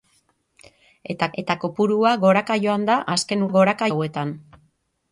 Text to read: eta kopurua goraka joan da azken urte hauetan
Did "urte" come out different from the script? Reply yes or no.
yes